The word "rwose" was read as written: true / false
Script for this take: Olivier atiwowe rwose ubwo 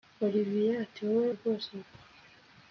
true